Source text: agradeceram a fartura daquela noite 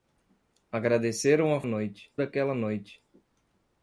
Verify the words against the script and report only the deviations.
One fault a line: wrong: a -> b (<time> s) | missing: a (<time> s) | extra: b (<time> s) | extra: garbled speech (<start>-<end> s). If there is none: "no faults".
wrong: fartura -> noite (1.6 s)